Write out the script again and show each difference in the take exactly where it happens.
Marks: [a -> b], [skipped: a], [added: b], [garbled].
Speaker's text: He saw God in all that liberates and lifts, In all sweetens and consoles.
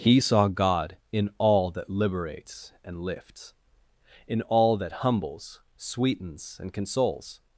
He saw God in all that liberates and lifts, In all [added: that humbles] sweetens and consoles.